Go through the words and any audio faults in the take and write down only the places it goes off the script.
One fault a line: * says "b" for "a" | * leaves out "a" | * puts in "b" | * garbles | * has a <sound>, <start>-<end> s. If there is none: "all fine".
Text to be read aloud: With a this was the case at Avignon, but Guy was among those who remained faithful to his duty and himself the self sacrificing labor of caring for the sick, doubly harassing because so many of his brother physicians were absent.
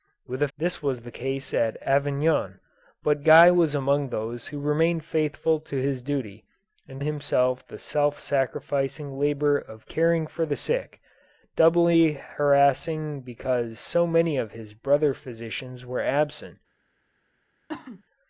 * has a cough, 17.7-18.0 s